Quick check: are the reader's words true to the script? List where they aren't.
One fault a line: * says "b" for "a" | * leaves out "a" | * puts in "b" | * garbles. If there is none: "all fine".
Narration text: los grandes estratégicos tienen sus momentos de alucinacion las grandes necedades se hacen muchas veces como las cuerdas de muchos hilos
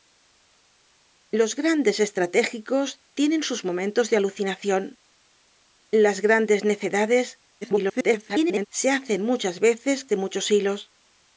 * garbles
* leaves out "como las cuerdas"